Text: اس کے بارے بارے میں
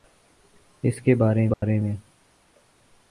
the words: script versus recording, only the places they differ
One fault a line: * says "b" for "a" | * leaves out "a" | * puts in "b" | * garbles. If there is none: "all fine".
all fine